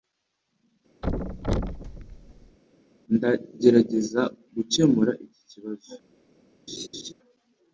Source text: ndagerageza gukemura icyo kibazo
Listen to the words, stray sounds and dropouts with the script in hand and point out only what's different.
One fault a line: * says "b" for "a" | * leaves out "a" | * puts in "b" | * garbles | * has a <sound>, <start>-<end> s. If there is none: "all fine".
* has a thud, 1.0-2.6 s
* says "iki" for "icyo"
* has a laugh, 6.7-7.1 s